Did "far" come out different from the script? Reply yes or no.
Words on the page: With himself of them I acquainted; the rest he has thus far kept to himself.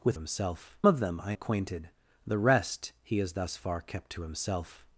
no